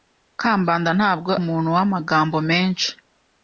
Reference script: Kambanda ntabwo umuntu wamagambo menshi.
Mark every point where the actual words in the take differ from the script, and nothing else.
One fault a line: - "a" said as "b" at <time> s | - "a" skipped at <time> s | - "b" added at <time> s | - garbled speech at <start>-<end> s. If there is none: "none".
none